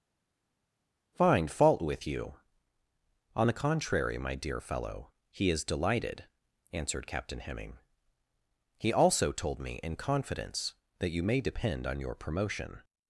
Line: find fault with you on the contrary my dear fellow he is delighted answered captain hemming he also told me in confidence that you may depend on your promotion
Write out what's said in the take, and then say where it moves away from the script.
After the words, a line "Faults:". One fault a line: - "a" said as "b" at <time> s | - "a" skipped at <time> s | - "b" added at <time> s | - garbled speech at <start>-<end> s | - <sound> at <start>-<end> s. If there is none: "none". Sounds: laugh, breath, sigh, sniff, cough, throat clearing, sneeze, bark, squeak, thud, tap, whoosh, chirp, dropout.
find fault with you on the contrary my dear fellow he is delighted answered captain hemming he also told me in confidence that you may depend on your promotion
Faults:
none